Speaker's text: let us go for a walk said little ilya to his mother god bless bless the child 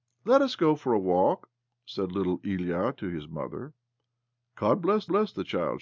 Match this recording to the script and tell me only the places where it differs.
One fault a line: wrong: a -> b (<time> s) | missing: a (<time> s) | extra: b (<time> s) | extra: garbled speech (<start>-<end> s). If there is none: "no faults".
no faults